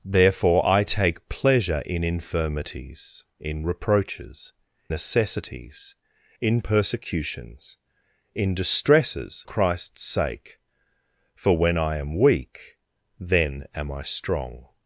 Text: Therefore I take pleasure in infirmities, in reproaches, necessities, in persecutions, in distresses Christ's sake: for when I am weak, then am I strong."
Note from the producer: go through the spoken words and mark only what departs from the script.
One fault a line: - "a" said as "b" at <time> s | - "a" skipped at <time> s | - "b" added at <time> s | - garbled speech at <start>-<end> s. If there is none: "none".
none